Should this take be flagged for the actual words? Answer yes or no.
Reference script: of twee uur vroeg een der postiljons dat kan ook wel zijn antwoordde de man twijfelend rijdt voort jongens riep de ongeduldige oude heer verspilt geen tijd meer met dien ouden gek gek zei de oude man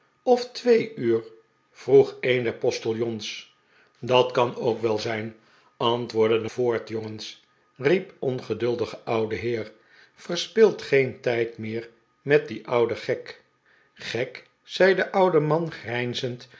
yes